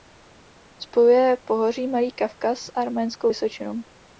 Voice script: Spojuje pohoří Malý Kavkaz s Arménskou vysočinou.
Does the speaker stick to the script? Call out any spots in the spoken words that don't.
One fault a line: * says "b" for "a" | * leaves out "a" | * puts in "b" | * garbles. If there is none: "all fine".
all fine